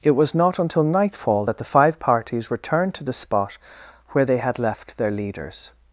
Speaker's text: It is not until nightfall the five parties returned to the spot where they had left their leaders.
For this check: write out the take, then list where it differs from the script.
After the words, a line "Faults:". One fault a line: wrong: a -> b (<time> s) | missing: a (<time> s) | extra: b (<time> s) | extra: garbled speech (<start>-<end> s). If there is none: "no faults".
It was not until nightfall that the five parties returned to the spot where they had left their leaders.
Faults:
wrong: is -> was (0.1 s)
extra: that (1.4 s)